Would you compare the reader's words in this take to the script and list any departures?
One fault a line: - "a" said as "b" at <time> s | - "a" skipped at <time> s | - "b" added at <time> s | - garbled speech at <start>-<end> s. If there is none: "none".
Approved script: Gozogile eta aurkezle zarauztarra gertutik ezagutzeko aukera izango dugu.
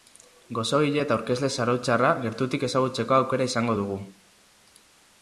none